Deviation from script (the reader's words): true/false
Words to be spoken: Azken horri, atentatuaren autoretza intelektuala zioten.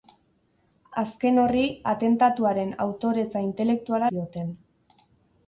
false